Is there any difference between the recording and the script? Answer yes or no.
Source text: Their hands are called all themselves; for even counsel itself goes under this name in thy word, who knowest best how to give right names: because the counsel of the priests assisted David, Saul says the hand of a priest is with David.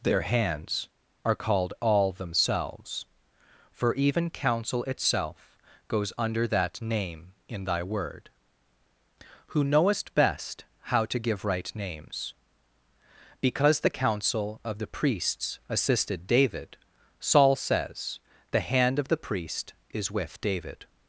yes